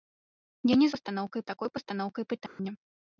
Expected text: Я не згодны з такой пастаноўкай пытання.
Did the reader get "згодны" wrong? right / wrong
wrong